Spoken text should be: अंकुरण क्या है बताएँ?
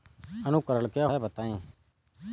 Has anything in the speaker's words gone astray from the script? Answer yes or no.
no